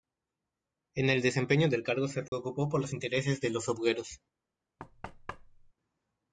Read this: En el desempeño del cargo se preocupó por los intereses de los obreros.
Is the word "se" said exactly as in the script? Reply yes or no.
yes